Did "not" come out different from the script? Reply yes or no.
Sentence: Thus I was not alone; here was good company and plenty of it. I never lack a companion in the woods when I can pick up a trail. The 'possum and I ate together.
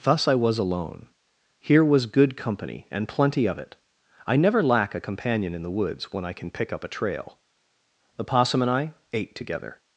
yes